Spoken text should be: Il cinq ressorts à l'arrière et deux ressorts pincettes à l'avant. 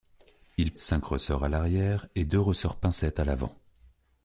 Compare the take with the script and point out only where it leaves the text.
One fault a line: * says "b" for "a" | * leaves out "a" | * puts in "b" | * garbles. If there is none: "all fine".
all fine